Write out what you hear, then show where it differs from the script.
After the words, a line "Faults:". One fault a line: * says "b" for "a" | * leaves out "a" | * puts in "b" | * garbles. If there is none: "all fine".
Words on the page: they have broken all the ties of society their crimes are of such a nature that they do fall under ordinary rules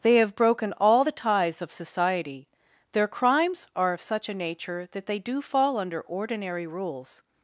they have broken all the ties of society their crimes are of such a nature that they do fall under ordinary rules
Faults:
all fine